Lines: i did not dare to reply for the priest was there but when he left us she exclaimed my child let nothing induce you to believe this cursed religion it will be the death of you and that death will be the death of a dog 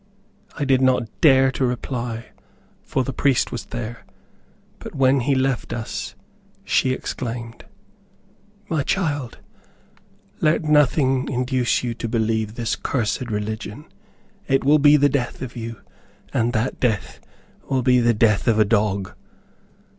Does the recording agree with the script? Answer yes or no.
yes